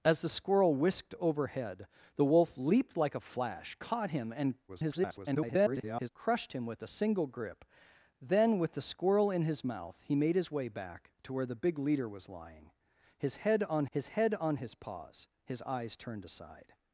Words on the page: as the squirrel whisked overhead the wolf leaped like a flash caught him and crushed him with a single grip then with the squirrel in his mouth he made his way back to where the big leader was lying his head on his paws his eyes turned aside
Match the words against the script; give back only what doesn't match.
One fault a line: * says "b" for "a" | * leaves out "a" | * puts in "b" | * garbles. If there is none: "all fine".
* garbles
* puts in "head on his"